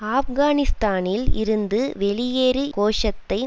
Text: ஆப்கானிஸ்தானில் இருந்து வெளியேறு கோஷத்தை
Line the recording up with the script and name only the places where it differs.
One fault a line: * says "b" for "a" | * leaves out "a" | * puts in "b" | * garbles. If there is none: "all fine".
all fine